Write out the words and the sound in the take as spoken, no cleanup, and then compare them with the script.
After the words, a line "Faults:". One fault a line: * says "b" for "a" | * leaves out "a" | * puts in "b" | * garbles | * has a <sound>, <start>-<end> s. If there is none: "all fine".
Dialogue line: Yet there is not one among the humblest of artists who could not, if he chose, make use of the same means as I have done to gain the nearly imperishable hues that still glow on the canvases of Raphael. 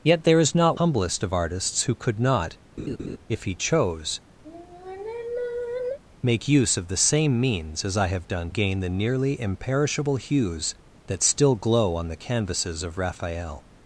Yet there is not humblest of artists who could not, if he chose, make use of the same means as I have done gain the nearly imperishable hues that still glow on the canvases of Raphael.
Faults:
* leaves out "one among the"
* has a laugh, 2.8-3.2 s
* has a sigh, 4.4-6.0 s
* leaves out "to"